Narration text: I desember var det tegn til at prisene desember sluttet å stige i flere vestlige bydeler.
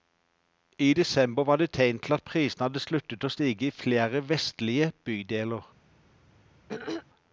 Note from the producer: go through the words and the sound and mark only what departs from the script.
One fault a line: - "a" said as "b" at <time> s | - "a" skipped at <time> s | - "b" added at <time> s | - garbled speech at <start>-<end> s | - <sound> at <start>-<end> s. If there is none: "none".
- "desember" said as "hadde" at 2.7 s
- throat clearing at 6.7-7.1 s